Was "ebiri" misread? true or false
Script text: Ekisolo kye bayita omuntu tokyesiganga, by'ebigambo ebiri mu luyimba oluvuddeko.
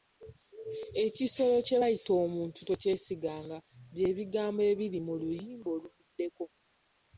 false